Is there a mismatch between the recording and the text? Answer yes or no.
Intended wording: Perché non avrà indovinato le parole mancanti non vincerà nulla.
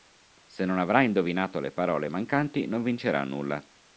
yes